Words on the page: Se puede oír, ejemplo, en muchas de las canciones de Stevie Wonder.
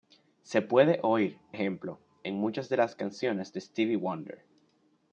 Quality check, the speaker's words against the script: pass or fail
pass